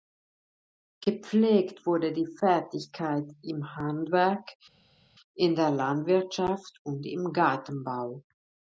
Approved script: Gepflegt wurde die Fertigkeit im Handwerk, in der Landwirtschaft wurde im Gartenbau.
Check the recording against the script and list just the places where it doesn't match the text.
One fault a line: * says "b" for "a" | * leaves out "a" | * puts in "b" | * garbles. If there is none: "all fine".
* says "und" for "wurde"